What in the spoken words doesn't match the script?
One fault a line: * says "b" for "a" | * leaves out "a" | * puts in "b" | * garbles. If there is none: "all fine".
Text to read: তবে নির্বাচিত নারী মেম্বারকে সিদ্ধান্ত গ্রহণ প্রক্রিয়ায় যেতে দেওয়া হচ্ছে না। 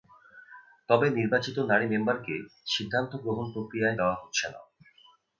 * leaves out "যেতে"